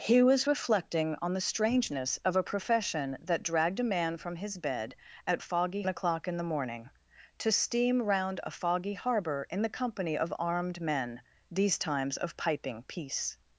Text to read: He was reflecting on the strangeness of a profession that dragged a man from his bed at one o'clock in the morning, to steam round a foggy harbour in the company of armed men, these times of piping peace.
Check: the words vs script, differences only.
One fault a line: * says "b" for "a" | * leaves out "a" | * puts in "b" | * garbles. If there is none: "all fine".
* says "foggy" for "one"